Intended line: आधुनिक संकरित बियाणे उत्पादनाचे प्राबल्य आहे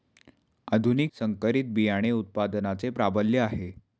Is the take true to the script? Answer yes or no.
yes